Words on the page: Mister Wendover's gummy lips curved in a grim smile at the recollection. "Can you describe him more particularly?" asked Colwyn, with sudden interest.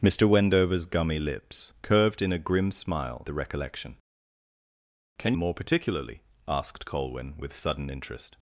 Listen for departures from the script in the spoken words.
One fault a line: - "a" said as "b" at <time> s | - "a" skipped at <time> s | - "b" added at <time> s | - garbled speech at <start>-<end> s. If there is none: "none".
- "at" skipped at 3.3 s
- "you describe him" skipped at 5.3 s